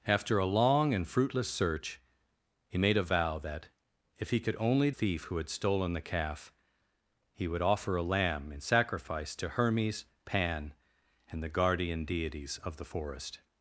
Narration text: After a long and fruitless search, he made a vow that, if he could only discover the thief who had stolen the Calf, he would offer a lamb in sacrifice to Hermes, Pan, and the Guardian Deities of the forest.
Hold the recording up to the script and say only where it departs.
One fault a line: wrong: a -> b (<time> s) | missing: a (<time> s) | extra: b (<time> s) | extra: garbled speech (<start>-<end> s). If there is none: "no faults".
missing: discover the (4.9 s)